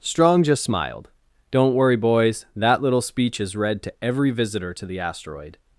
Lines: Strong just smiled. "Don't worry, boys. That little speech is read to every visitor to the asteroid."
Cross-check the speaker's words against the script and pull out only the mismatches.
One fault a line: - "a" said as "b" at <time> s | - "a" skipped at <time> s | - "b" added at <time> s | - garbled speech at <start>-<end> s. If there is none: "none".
none